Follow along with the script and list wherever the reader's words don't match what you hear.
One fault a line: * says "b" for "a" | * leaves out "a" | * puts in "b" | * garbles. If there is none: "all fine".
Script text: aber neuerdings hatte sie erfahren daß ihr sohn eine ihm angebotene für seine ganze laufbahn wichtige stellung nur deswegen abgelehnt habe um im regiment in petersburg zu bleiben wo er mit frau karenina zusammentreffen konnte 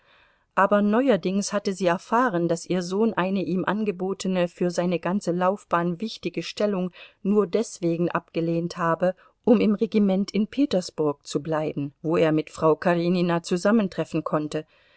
all fine